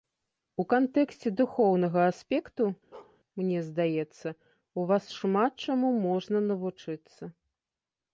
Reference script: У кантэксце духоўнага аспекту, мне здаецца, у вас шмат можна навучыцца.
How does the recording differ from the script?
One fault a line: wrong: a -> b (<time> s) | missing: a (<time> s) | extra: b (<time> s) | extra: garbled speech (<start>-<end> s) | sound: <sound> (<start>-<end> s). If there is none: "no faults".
sound: bark (2.9-3.2 s)
extra: чаму (5.7 s)